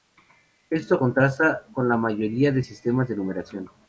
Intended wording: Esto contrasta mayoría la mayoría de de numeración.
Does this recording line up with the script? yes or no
no